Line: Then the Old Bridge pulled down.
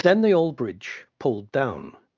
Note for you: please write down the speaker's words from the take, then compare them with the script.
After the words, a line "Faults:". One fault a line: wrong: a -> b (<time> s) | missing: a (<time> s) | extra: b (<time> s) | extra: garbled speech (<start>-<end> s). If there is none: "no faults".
Then the Old Bridge pulled down.
Faults:
no faults